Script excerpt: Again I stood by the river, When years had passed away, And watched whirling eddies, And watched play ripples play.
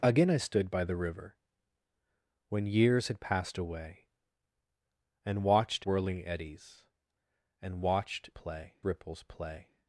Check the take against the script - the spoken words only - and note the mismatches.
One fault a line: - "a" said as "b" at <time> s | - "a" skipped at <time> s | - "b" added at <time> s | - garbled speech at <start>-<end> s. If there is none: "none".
none